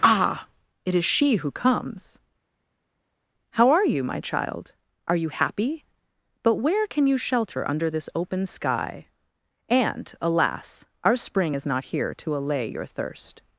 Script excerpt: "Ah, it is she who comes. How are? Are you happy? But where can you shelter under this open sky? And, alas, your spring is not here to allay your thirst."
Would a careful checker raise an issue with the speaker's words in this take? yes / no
yes